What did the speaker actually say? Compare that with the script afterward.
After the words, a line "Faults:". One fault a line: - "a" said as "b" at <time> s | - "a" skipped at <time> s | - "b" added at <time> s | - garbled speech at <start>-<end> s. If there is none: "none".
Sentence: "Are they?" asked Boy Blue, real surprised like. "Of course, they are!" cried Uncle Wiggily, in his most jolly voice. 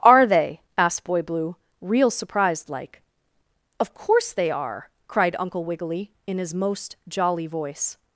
"Are they?" asked Boy Blue, real surprised like. "Of course, they are!" cried Uncle Wiggily, in his most jolly voice.
Faults:
none